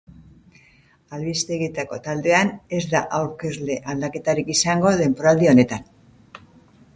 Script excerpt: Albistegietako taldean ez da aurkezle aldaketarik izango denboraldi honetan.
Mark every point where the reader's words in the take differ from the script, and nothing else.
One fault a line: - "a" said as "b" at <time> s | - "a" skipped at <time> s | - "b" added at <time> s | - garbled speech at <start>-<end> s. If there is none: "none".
none